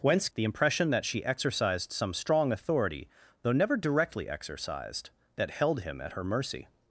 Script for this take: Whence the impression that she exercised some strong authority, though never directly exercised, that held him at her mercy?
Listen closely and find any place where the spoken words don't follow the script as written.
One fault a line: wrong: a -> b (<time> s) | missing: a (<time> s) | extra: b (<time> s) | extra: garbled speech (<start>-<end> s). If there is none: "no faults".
no faults